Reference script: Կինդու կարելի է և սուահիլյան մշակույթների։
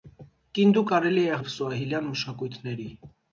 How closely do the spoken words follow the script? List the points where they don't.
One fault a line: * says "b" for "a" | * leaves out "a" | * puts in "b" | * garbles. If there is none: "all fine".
all fine